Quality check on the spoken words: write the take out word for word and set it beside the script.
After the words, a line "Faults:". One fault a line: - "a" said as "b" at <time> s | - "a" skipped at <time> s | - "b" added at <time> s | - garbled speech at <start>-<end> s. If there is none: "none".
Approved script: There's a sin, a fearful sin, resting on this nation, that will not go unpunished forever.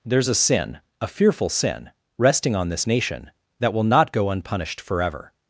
There's a sin, a fearful sin, resting on this nation, that will not go unpunished forever.
Faults:
none